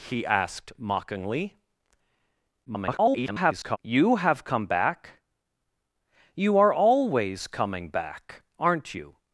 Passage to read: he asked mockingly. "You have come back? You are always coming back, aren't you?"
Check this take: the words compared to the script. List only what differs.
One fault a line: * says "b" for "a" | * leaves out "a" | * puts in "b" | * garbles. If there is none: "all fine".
* garbles